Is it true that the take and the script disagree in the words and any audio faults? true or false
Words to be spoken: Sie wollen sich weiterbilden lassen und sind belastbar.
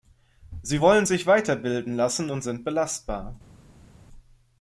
false